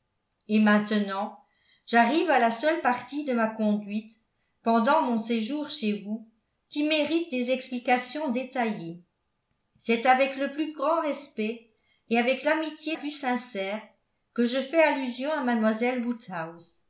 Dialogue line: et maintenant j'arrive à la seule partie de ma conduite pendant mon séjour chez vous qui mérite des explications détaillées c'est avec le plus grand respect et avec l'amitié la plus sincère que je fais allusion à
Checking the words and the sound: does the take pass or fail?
fail